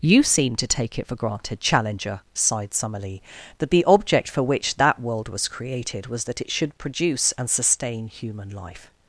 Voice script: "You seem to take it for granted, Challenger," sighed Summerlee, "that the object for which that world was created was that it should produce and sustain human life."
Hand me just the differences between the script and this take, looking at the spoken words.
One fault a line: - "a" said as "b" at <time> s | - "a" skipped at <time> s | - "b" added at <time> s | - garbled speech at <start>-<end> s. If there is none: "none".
none